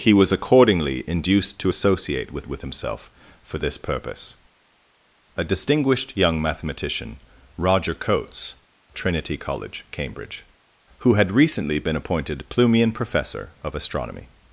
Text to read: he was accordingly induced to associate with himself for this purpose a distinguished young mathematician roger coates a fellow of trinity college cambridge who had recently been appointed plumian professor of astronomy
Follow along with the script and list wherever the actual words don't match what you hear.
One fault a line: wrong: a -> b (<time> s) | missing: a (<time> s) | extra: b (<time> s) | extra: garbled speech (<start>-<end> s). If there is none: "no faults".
extra: with (2.5 s)
missing: a fellow of (8.5 s)